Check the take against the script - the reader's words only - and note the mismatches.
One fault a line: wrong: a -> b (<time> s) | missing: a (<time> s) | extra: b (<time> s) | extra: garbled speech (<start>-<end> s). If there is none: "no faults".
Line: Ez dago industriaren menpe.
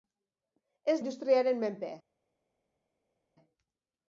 missing: dago (1.0 s)